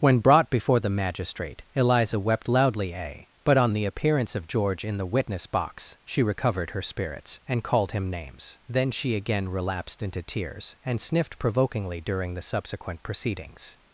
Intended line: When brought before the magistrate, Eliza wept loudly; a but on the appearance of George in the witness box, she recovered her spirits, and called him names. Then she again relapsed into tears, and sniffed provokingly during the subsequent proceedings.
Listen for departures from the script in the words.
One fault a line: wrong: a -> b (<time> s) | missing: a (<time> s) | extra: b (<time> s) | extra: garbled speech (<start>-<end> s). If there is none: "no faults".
no faults